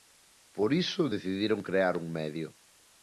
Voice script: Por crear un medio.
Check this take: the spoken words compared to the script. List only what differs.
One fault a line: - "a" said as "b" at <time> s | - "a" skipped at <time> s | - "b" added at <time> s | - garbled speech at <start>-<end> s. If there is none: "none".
- "iso decidiron" added at 0.7 s